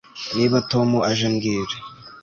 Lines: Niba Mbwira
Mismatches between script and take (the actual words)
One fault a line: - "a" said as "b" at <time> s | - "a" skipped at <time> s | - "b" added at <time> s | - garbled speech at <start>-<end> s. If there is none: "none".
- "Tom aje" added at 0.7 s